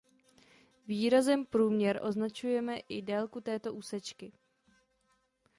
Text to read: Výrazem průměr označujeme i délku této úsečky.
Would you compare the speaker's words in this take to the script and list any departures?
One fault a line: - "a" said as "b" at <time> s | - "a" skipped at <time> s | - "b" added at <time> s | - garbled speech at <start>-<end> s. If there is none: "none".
none